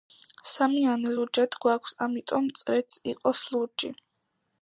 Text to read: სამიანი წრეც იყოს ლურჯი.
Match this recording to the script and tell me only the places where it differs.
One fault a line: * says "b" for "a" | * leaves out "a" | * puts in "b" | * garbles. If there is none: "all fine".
* puts in "ლურჯად გვაქვს ამიტომ"